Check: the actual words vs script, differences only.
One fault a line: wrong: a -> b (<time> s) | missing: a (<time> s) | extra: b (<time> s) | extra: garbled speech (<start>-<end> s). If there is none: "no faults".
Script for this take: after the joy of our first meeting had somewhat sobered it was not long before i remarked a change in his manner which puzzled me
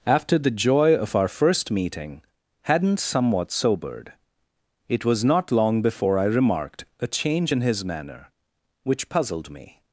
wrong: had -> hadn't (2.6 s)